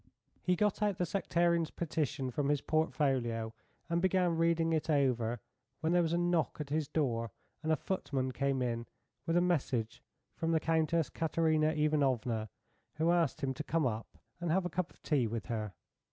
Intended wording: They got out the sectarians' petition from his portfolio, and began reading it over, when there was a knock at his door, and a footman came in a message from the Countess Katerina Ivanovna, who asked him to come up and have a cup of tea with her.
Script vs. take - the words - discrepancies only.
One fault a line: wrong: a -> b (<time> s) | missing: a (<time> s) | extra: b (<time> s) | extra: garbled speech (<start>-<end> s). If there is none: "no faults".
wrong: They -> He (0.4 s)
extra: with (9.3 s)